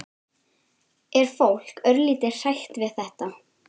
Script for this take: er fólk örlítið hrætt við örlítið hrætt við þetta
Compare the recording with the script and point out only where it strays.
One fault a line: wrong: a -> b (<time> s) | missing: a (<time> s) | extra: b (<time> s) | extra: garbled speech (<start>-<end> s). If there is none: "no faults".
missing: örlítið hrætt við (3.0 s)